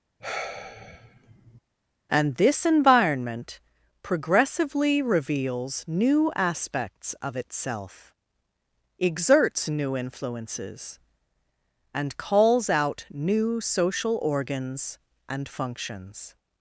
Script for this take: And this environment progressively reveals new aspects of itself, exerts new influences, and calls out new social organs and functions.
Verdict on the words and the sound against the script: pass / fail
fail